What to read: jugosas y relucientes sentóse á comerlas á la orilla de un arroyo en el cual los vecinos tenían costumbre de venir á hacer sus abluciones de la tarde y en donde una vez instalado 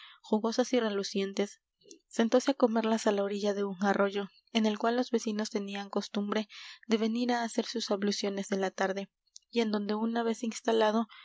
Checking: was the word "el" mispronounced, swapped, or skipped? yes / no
no